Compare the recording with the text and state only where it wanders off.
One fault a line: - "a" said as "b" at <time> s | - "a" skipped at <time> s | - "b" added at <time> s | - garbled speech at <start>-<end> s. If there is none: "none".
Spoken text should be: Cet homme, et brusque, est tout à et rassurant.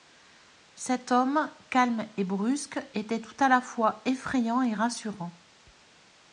- "calme" added at 1.7 s
- "est" said as "était" at 3.0 s
- "la fois effrayant" added at 3.5 s